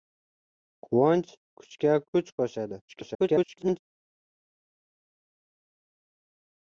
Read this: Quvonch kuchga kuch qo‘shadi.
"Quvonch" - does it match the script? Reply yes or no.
yes